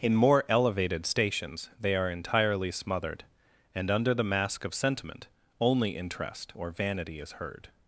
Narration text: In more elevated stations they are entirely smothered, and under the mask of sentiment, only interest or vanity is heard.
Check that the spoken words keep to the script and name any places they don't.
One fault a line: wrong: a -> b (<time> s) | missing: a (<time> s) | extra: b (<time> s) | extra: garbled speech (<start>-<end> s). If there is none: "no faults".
no faults